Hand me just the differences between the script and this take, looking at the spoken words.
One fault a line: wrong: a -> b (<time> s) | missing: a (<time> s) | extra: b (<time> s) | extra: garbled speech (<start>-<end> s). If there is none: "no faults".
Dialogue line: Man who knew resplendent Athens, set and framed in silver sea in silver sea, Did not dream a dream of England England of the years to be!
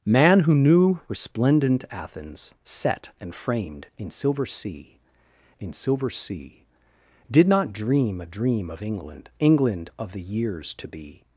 no faults